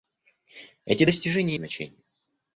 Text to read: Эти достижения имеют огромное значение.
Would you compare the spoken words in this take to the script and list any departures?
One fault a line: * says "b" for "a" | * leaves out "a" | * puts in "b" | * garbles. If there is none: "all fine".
* leaves out "имеют огромное"